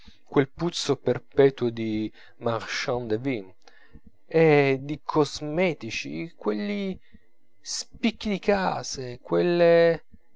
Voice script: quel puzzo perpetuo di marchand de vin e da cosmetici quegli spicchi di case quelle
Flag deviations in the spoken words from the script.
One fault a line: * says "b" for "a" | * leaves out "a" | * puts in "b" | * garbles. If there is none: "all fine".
* says "di" for "da"